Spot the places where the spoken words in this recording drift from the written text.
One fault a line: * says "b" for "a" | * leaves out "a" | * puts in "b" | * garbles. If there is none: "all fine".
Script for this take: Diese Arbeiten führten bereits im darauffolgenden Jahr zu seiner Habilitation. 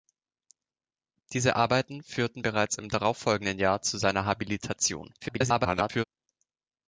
* garbles